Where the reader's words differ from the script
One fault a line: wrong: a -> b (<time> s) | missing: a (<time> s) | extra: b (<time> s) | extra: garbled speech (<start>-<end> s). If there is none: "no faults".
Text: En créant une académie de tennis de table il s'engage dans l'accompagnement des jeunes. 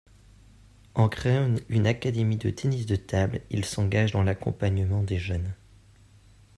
no faults